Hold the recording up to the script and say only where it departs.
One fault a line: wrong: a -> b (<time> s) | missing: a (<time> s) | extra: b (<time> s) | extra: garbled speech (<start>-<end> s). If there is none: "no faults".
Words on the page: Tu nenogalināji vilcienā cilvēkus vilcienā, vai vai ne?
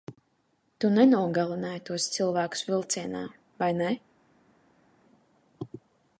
wrong: vilcienā -> tos (1.9 s)
missing: vai (3.7 s)